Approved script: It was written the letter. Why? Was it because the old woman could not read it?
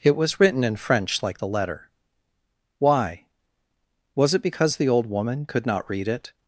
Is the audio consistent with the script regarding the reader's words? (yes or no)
no